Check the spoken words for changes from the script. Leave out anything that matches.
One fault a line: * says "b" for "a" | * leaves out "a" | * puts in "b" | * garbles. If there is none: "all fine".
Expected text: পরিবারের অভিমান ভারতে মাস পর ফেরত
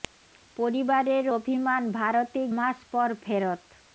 all fine